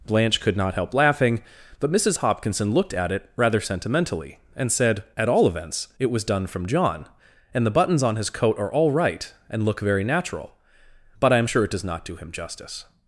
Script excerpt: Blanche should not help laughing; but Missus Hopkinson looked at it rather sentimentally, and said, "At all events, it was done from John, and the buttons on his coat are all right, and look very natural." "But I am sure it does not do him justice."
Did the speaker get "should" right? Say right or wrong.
wrong